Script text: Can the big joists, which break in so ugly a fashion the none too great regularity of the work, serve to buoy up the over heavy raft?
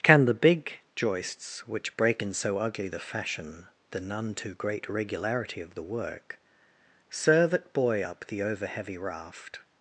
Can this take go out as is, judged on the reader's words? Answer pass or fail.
fail